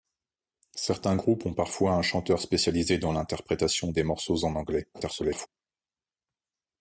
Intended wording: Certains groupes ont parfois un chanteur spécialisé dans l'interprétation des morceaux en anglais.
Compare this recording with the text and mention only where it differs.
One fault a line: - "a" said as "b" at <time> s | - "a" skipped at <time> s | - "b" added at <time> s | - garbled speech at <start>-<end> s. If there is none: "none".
- garbled speech at 4.9-5.5 s